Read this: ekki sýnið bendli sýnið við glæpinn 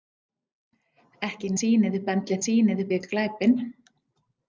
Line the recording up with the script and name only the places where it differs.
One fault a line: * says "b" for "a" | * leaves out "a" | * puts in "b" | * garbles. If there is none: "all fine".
all fine